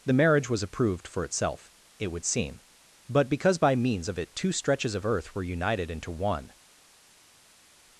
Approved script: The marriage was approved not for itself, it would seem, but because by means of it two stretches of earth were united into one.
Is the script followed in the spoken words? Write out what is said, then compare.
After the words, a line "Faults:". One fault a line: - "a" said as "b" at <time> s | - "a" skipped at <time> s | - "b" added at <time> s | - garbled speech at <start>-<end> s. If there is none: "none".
The marriage was approved for itself, it would seem, but because by means of it two stretches of earth were united into one.
Faults:
- "not" skipped at 1.1 s